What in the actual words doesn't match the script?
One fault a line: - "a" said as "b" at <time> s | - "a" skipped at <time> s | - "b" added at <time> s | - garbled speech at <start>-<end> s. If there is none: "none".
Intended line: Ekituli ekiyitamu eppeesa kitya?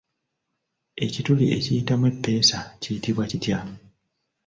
- "kiyitibwa" added at 2.8 s